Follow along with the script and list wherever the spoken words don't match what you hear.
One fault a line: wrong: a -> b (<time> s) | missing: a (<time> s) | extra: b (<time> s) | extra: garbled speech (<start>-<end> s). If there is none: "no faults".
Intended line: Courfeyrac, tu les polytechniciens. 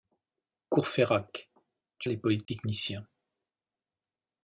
no faults